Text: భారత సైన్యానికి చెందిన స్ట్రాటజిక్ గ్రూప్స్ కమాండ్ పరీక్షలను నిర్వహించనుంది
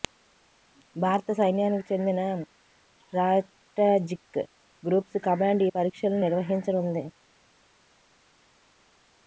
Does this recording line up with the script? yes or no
no